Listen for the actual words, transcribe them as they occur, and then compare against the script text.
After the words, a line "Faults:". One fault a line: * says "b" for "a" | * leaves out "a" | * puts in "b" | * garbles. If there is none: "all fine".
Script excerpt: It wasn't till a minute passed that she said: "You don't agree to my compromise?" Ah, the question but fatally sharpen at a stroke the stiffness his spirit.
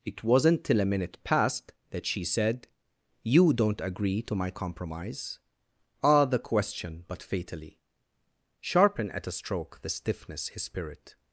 It wasn't till a minute passed that she said: "You don't agree to my compromise?" Ah, the question but fatally sharpen at a stroke the stiffness his spirit.
Faults:
all fine